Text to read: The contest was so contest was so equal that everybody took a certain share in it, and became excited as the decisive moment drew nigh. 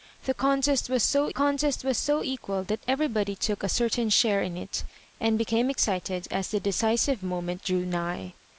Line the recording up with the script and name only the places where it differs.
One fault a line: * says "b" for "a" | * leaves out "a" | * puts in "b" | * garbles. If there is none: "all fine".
all fine